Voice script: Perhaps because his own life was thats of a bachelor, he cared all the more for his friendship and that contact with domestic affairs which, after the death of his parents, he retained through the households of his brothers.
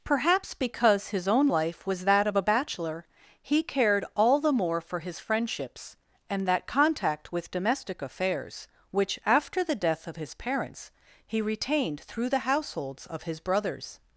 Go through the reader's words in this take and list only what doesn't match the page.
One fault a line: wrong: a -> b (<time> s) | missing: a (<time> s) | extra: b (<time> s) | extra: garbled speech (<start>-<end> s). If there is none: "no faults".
wrong: thats -> that (2.0 s)
wrong: friendship -> friendships (5.2 s)